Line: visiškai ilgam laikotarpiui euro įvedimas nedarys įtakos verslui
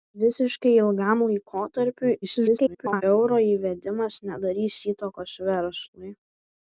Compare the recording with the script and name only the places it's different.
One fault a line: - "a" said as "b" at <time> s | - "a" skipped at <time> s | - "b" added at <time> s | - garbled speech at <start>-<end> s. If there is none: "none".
- garbled speech at 2.2-3.0 s